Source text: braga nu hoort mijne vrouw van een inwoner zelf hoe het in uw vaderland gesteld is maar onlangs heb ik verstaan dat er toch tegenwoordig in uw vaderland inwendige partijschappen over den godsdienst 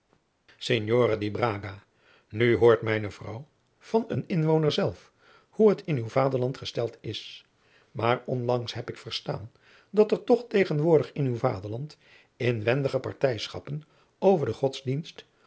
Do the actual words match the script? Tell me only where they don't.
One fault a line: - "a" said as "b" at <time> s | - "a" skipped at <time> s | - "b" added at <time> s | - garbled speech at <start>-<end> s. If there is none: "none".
none